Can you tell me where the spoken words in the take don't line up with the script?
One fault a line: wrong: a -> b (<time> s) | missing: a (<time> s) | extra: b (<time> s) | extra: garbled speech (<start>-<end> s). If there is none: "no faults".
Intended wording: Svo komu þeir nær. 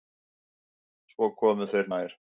no faults